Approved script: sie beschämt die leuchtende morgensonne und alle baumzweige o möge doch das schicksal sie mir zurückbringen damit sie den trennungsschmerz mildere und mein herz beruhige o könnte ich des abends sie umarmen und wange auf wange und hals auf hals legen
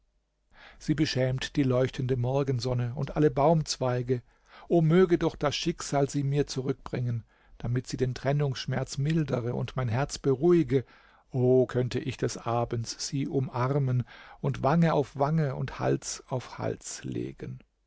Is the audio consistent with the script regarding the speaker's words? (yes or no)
yes